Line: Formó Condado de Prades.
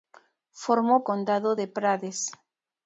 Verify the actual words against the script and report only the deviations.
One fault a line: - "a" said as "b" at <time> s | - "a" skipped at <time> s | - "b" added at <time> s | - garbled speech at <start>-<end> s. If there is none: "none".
none